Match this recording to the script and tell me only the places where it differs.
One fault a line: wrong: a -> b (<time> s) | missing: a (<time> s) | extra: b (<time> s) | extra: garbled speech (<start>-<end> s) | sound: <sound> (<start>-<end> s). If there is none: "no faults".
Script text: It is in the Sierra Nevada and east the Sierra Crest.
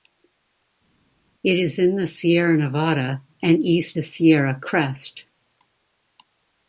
no faults